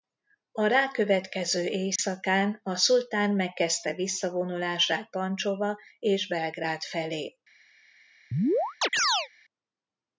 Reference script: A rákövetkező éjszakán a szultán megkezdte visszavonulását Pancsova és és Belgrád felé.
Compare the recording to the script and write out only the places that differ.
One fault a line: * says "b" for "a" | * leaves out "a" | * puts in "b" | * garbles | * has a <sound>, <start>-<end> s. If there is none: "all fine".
* has a dropout, 2.0-2.0 s
* leaves out "és"
* has a chirp, 8.3-9.3 s